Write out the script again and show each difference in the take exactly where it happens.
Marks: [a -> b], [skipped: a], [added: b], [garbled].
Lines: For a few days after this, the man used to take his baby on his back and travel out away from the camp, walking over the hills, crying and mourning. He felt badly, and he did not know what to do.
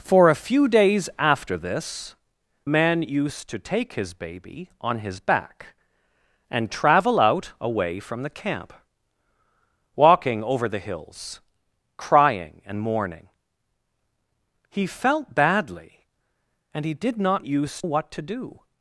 For a few days after this, [skipped: the] man used to take his baby on his back and travel out away from the camp, walking over the hills, crying and mourning. He felt badly, and he did not [know -> used] what to do.